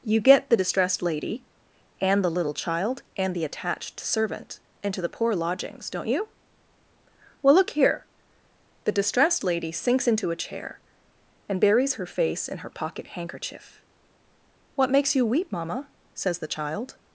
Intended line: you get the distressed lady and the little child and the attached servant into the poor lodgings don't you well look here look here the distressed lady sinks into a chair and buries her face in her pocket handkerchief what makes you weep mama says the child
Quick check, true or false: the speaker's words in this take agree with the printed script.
false